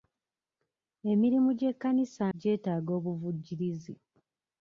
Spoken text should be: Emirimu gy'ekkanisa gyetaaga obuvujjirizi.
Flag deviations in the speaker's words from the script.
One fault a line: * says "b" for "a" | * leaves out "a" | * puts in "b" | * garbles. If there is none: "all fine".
all fine